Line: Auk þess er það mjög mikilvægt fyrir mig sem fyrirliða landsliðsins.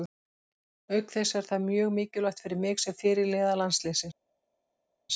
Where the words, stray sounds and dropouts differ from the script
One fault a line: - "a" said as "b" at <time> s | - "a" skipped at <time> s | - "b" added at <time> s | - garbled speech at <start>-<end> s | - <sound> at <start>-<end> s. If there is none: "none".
none